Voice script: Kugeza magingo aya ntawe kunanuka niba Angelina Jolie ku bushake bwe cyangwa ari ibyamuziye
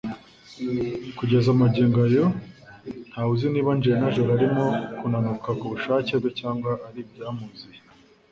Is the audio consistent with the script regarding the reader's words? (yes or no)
no